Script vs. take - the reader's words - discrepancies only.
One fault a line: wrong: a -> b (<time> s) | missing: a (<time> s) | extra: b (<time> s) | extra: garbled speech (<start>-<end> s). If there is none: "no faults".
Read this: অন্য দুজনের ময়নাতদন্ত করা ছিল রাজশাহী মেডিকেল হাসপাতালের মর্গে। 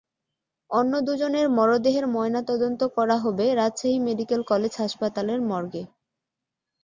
extra: মরদেহের (1.5 s)
wrong: ছিল -> হবে (3.2 s)
extra: কলেজ (4.5 s)